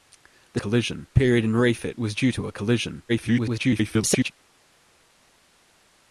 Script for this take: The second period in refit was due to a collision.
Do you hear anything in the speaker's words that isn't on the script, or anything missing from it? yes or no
yes